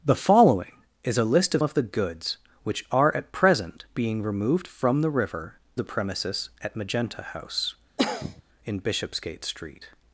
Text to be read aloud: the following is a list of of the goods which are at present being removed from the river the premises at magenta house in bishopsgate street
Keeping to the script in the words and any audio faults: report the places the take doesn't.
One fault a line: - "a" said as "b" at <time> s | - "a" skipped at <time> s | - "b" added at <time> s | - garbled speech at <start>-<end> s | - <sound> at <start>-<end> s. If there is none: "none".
- cough at 8.0-8.4 s